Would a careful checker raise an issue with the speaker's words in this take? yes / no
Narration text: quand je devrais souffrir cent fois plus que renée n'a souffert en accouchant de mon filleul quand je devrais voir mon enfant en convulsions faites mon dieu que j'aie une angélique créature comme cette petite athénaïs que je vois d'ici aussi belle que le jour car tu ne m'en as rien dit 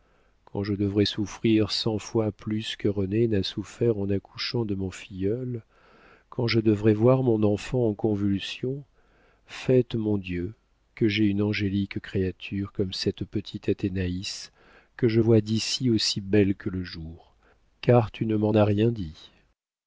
no